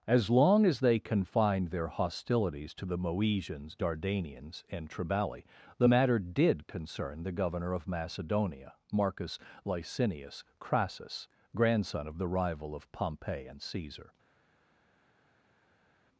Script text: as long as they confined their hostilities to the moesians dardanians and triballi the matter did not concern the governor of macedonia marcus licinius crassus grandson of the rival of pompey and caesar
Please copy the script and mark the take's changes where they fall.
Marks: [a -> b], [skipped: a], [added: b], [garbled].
as long as they confined their hostilities to the moesians dardanians and triballi the matter did [skipped: not] concern the governor of macedonia marcus licinius crassus grandson of the rival of pompey and caesar